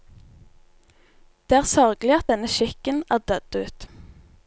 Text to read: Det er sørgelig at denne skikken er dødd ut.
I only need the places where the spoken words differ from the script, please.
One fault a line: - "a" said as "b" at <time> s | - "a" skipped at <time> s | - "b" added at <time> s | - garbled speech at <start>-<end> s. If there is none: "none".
none